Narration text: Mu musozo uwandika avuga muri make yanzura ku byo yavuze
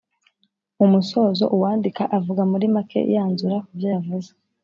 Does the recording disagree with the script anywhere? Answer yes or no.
no